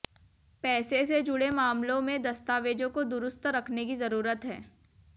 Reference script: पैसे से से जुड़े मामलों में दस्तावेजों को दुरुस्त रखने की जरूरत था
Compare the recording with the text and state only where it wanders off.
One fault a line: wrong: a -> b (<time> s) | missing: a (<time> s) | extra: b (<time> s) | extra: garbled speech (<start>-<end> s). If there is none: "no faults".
missing: से (1.2 s)
wrong: था -> है (4.5 s)